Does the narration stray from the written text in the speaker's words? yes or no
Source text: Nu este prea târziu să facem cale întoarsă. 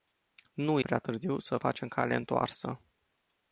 yes